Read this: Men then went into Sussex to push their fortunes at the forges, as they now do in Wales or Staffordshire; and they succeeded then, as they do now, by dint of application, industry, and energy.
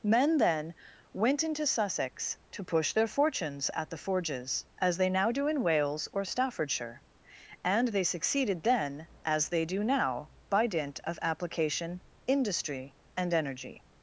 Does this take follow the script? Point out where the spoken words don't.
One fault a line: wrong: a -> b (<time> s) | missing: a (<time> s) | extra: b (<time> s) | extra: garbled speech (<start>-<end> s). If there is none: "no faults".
no faults